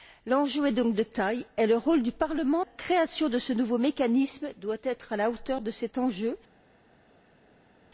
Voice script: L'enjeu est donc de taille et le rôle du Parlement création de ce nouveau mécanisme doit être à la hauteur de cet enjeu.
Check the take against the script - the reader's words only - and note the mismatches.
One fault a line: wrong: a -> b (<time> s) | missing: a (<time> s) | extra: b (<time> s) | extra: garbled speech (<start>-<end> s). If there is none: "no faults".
no faults